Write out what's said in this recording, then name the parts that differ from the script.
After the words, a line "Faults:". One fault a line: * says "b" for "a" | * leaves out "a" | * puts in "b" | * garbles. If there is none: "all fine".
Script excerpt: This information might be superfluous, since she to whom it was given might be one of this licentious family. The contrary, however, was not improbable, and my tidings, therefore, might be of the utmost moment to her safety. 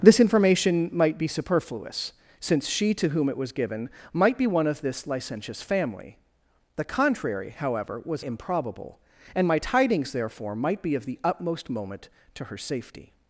This information might be superfluous, since she to whom it was given might be one of this licentious family. The contrary, however, was improbable, and my tidings, therefore, might be of the utmost moment to her safety.
Faults:
* leaves out "not"